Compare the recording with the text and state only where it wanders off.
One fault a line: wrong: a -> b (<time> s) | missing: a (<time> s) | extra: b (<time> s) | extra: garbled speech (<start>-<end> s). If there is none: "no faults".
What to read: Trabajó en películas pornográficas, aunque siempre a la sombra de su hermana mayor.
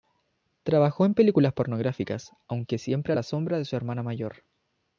no faults